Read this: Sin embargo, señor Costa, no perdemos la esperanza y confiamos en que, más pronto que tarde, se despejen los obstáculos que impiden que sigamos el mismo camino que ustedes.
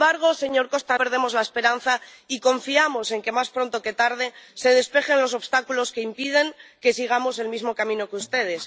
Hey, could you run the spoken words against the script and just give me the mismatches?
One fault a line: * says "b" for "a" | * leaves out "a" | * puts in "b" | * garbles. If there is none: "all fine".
* leaves out "no"